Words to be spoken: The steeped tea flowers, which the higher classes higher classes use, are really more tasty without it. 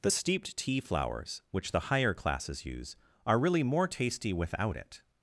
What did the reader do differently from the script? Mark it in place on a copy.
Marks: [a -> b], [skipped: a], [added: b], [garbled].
The steeped tea flowers, which the higher classes [skipped: higher classes] use, are really more tasty without it.